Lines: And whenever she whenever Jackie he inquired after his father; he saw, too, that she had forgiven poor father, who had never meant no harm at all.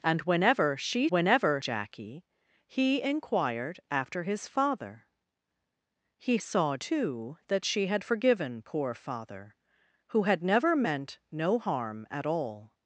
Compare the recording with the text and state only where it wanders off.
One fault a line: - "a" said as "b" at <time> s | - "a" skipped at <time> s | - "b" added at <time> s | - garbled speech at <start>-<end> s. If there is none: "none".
none